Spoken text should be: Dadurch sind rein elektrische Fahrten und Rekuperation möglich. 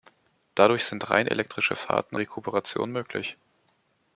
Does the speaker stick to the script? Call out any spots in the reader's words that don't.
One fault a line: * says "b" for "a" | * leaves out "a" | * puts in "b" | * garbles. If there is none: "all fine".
* leaves out "und"